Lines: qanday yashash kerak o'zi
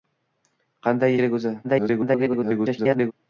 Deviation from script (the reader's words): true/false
true